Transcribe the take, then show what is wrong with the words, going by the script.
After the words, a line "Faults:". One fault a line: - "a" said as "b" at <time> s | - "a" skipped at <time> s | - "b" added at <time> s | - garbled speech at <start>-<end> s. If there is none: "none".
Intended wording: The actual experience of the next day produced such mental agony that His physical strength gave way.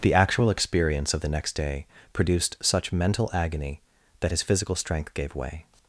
The actual experience of the next day produced such mental agony that His physical strength gave way.
Faults:
none